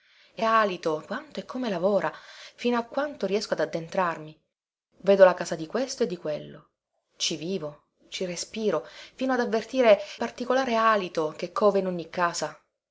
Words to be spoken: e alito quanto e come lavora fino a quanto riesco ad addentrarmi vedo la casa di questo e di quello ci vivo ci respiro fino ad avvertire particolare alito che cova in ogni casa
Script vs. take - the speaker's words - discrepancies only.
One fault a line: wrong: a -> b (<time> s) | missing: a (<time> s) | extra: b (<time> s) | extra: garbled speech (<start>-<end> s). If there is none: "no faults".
no faults